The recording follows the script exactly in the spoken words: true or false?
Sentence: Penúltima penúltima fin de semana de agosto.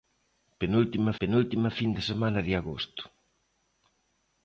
true